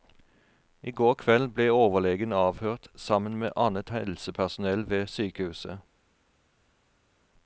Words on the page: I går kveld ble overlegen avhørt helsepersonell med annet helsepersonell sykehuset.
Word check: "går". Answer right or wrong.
right